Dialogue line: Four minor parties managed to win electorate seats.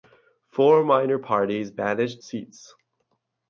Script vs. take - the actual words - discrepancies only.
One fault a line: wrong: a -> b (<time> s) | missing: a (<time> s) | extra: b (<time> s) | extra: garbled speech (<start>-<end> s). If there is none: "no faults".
missing: to win electorate (2.2 s)